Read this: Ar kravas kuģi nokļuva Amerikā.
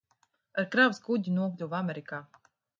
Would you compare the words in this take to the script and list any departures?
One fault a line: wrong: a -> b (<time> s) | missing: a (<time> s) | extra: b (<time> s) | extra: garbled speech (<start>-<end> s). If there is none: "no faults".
no faults